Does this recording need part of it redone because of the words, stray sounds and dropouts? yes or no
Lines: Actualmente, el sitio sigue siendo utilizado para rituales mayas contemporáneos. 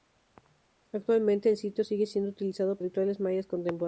yes